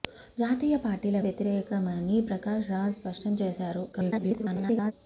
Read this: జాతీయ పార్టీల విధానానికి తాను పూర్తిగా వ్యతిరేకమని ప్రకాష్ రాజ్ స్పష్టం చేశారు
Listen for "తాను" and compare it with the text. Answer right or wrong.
wrong